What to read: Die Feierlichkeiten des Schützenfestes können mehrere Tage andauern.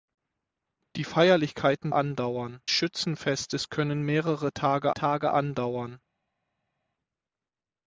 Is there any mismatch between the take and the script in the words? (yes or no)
yes